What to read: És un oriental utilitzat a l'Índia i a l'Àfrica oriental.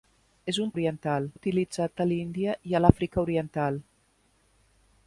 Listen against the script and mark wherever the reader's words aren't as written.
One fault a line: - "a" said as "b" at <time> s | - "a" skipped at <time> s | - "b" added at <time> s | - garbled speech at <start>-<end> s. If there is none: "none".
none